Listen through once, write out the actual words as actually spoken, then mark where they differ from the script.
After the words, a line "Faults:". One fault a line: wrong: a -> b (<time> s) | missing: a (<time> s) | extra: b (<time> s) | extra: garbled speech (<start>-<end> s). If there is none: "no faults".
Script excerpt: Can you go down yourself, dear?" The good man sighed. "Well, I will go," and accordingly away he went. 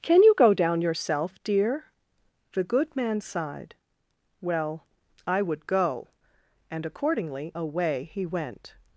Can you go down yourself, dear?" The good man sighed. "Well, I would go," and accordingly away he went.
Faults:
wrong: will -> would (5.4 s)